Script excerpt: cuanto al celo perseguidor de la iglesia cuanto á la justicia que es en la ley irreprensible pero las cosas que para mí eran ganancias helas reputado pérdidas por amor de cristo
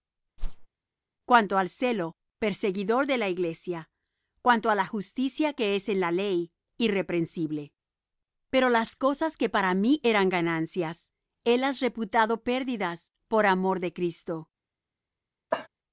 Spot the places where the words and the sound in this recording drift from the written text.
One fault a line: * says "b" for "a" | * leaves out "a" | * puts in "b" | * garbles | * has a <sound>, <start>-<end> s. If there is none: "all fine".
* has a whoosh, 0.4-0.7 s
* has a cough, 15.5-15.7 s